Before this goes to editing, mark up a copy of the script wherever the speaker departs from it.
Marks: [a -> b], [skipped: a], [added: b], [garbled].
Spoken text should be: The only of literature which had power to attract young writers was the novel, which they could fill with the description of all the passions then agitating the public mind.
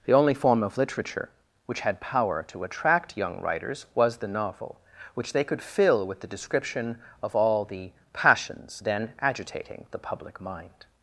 The only [added: form] of literature which had power to attract young writers was the novel, which they could fill with the description of all the passions then agitating the public mind.